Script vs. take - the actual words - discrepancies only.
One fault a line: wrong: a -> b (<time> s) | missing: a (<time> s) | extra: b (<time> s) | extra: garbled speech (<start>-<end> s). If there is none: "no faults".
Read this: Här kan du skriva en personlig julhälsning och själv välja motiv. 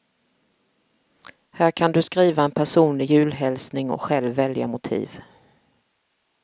no faults